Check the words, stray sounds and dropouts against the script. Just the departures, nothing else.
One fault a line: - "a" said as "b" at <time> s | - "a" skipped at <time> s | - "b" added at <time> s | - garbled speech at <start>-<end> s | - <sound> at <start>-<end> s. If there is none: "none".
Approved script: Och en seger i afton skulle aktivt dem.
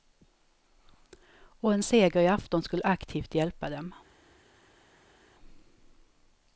- "hjälpa" added at 3.3 s